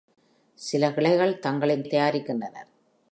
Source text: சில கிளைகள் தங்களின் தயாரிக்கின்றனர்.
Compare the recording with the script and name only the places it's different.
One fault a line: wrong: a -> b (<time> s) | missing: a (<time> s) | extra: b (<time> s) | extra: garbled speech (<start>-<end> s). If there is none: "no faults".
no faults